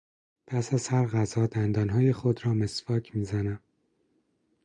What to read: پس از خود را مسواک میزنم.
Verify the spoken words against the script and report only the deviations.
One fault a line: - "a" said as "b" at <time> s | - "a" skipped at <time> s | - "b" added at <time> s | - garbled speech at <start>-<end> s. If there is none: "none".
- "هر غذا دندانهای" added at 0.8 s